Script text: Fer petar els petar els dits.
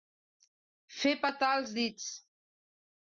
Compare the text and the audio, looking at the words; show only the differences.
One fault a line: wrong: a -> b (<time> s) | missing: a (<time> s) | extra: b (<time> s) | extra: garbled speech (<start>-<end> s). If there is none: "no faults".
missing: petar els (1.8 s)